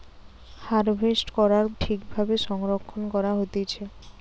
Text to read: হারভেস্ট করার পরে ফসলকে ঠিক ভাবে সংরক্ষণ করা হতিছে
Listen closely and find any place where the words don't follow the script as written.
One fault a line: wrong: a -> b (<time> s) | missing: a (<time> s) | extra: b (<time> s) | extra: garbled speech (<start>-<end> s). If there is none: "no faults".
missing: পরে ফসলকে (1.6 s)